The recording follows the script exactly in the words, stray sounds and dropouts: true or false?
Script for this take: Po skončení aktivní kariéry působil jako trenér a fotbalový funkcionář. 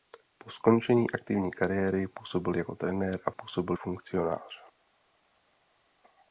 false